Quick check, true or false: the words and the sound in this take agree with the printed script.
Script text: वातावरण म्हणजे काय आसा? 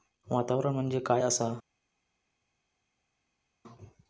true